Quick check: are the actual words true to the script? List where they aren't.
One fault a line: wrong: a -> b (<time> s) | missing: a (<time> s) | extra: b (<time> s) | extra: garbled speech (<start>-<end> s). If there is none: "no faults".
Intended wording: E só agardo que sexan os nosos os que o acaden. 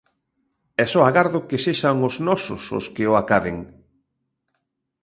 no faults